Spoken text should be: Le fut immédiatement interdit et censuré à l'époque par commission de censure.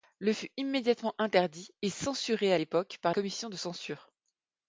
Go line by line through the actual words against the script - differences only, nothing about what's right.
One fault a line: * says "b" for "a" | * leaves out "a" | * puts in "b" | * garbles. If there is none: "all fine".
all fine